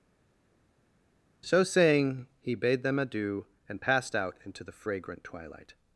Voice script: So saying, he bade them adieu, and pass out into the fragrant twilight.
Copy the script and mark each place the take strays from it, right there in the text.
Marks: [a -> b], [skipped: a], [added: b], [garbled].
So saying, he bade them adieu, and [pass -> passed] out into the fragrant twilight.